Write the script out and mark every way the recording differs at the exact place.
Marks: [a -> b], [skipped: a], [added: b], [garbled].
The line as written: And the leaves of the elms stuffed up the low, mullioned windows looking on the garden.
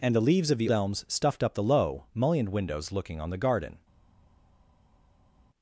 And the leaves of the elms stuffed up the low, mullioned windows looking on the garden.